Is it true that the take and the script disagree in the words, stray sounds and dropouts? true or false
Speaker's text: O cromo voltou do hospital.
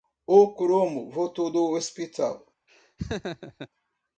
true